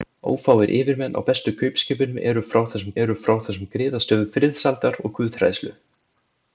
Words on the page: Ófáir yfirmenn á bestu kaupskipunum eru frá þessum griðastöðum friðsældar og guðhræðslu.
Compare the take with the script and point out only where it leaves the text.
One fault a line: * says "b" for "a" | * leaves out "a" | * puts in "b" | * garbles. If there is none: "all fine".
* puts in "eru frá þessum"